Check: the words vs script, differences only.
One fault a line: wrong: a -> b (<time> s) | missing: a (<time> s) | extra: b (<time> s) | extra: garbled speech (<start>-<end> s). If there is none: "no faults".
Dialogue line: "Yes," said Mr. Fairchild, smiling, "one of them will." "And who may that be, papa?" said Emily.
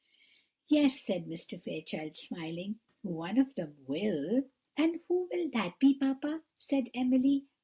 wrong: may -> will (5.3 s)